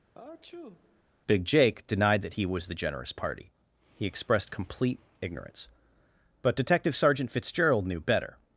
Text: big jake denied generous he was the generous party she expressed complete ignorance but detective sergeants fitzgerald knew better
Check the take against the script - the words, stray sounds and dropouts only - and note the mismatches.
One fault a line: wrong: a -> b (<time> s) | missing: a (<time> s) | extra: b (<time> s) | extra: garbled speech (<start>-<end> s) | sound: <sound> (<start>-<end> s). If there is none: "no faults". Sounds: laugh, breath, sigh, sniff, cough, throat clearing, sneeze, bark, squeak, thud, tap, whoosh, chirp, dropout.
sound: sneeze (0.1-1.0 s)
wrong: generous -> that (2.2 s)
wrong: she -> he (3.9 s)
wrong: sergeants -> sergeant (6.9 s)